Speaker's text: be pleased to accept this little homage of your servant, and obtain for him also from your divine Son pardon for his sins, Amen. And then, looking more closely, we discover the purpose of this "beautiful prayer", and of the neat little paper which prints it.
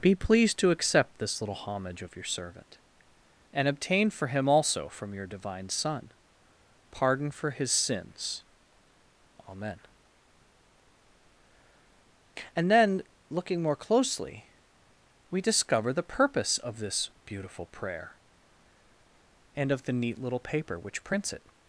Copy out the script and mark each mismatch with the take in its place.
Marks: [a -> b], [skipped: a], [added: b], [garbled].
be pleased to accept this little homage of your servant, and obtain for him also from your divine Son pardon for his sins, Amen. And then, looking more closely, we discover the purpose of this "beautiful prayer", and of the neat little paper which prints it.